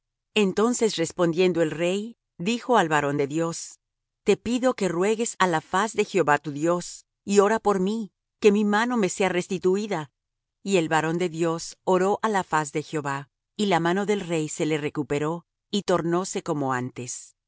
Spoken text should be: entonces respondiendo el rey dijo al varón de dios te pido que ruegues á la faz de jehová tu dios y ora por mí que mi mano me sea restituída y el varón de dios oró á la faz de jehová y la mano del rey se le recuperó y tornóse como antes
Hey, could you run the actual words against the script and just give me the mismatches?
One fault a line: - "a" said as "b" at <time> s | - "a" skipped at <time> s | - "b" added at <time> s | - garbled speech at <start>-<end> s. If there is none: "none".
none